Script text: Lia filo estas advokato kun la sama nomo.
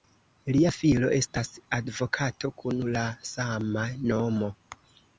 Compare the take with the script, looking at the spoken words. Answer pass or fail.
pass